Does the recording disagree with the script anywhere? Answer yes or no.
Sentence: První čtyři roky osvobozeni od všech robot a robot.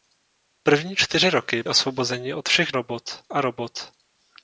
no